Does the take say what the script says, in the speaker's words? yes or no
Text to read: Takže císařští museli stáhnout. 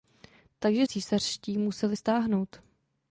yes